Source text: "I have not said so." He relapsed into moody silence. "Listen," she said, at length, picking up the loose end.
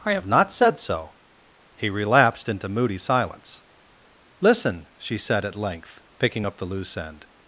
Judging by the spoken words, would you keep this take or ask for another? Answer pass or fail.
pass